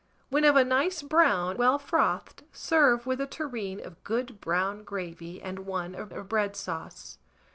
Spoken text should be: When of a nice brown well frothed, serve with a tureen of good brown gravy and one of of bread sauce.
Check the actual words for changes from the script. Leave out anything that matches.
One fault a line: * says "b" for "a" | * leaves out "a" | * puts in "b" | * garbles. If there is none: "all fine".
all fine